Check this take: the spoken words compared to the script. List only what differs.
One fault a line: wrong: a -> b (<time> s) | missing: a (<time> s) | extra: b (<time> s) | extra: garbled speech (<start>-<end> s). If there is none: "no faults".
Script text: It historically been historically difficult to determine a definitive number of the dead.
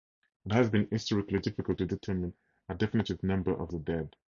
wrong: historically -> has (0.5 s)